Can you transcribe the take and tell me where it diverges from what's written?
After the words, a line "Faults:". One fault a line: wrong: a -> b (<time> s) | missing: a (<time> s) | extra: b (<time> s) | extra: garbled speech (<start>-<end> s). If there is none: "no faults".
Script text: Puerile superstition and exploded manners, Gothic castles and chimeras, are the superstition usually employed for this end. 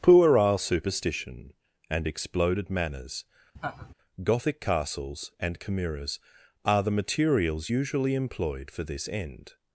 Puerile superstition and exploded manners, Gothic castles and chimeras, are the materials usually employed for this end.
Faults:
wrong: superstition -> materials (6.9 s)